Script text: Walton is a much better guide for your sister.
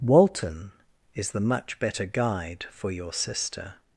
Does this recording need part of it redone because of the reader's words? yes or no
yes